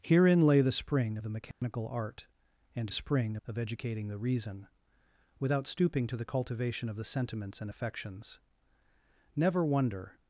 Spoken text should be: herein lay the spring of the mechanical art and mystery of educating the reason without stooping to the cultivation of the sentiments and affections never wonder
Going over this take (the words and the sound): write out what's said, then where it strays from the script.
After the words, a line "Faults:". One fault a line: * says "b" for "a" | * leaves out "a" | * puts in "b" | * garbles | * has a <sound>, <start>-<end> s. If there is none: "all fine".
herein lay the spring the mechanical art and spring of educating the reason without stooping to the cultivation of the sentiments and affections never wonder
Faults:
* leaves out "of"
* has a dropout, 1.5-1.6 s
* says "spring" for "mystery"